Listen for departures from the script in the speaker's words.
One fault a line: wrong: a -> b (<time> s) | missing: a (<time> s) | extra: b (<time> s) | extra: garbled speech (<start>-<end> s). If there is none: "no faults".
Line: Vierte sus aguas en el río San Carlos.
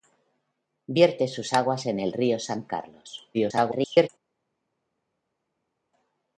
extra: garbled speech (3.3-4.1 s)